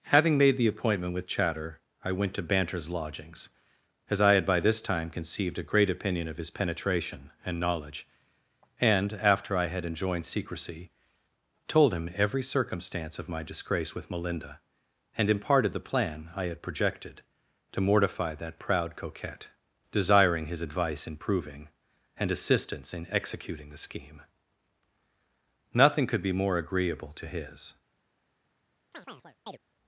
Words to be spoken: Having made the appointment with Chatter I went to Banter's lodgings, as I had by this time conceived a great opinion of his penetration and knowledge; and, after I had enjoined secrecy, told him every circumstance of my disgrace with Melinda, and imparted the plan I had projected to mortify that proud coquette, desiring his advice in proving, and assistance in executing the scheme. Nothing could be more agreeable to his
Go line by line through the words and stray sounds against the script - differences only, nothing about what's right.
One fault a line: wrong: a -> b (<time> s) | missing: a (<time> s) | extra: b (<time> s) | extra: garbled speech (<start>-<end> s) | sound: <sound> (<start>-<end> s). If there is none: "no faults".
sound: chirp (28.9-29.6 s)